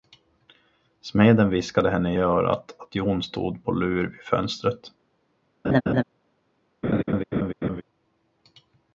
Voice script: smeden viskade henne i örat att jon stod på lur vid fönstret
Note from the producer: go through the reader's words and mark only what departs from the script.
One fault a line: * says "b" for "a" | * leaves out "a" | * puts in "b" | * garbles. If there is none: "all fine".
all fine